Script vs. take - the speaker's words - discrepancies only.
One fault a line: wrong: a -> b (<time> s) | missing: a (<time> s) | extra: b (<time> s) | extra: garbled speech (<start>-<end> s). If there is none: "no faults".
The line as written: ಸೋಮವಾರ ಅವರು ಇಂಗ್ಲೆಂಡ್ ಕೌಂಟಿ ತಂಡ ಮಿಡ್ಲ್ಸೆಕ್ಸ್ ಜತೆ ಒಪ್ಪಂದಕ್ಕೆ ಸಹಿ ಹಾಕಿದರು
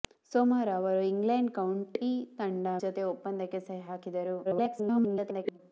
missing: ಮಿಡ್ಲ್ಸೆಕ್ಸ್ (2.7 s)
extra: garbled speech (4.4-5.6 s)